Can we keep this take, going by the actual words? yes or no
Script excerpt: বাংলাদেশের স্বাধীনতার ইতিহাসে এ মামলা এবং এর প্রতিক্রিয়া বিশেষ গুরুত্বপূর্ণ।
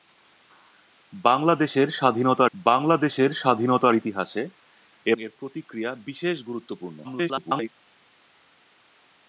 no